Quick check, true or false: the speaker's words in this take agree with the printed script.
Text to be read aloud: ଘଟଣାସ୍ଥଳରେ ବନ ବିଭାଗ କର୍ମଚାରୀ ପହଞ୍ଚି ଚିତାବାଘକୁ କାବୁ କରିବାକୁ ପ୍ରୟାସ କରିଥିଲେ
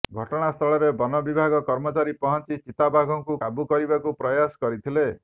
true